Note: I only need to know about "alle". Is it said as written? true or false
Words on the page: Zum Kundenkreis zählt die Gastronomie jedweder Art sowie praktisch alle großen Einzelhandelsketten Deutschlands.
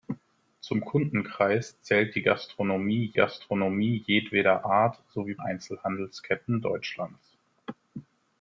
false